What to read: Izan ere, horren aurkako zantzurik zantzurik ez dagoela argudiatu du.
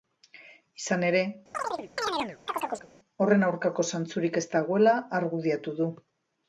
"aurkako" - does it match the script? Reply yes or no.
yes